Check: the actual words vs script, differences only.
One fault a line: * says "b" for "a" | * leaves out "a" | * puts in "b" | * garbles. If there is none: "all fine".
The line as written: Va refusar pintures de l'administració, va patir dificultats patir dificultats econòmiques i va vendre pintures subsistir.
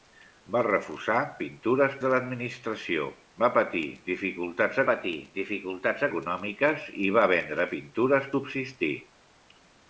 all fine